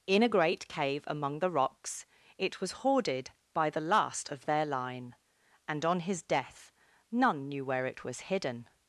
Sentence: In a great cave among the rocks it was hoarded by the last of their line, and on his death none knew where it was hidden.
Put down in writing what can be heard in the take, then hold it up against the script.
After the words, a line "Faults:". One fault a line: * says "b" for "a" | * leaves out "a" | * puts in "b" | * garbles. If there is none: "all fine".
In a great cave among the rocks it was hoarded by the last of their line, and on his death none knew where it was hidden.
Faults:
all fine